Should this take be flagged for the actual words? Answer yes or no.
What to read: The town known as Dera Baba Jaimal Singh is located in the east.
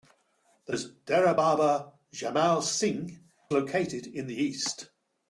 yes